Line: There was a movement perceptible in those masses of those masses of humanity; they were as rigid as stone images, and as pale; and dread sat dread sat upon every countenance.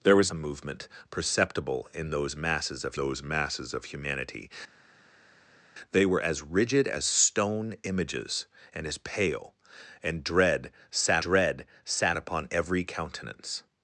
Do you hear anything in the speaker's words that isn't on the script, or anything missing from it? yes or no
no